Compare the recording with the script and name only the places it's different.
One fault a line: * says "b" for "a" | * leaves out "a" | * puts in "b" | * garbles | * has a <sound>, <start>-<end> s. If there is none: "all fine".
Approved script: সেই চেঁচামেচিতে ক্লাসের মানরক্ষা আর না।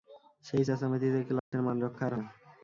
* has a dropout, 1.4-1.5 s